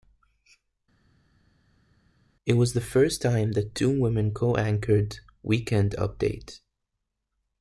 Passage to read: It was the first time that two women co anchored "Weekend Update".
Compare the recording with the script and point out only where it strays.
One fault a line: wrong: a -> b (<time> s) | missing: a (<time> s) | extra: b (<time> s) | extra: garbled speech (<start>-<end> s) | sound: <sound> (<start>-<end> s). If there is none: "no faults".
no faults